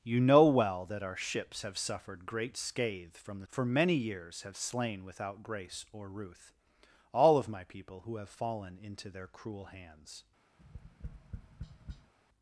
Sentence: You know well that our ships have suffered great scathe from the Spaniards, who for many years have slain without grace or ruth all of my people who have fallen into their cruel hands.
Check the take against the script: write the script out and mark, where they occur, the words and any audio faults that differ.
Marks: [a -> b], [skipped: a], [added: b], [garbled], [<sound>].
You know well that our ships have suffered great scathe from the [skipped: Spaniards, who] for many years have slain without grace or ruth all of my people who have fallen into their cruel hands. [tap]